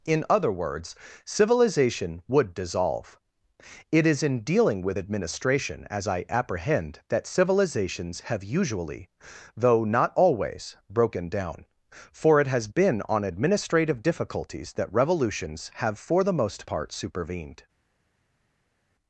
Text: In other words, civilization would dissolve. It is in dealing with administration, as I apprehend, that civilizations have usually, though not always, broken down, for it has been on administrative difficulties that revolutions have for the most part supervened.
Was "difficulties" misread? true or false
false